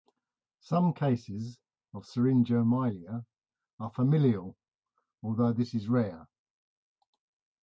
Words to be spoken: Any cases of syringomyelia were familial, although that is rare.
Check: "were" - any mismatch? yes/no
yes